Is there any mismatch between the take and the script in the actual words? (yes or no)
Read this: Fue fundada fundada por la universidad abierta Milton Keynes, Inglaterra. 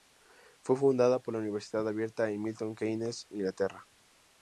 yes